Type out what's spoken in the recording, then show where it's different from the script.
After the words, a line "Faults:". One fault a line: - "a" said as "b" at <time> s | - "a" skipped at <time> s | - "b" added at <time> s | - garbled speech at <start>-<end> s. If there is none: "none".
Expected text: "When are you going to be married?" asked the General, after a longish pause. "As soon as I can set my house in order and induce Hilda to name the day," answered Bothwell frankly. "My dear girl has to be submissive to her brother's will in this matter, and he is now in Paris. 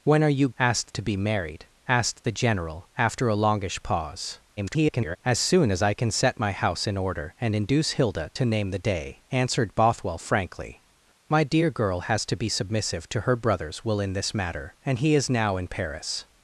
"When are you asked to be married?" asked the General, after a longish pause. [garbled] "As soon as I can set my house in order and induce Hilda to name the day," answered Bothwell frankly. "My dear girl has to be submissive to her brother's will in this matter, and he is now in Paris.
Faults:
- "going" said as "asked" at 0.6 s
- garbled speech at 4.6-5.2 s